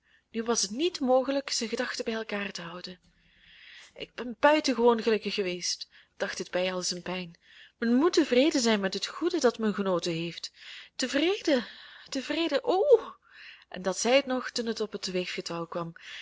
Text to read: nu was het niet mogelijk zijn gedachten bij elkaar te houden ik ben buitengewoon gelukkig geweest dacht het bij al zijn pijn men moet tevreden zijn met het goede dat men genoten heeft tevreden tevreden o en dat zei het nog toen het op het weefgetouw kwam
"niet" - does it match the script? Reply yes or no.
yes